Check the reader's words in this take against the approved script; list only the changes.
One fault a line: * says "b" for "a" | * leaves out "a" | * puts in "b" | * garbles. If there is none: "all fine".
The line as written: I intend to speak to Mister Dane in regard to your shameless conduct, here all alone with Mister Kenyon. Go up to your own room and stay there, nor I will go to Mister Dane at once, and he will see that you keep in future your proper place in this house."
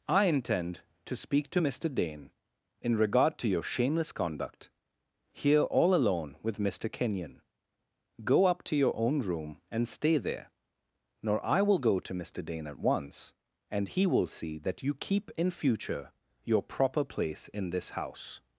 all fine